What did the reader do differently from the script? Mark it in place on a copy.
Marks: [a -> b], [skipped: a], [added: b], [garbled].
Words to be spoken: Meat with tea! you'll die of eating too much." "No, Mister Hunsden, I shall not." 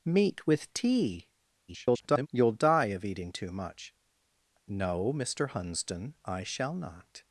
Meat with tea! [garbled] you'll die of eating too much." "No, Mister Hunsden, I shall not."